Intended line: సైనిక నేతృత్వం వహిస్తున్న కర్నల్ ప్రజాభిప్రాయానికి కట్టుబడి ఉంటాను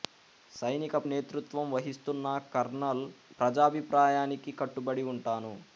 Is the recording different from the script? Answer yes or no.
no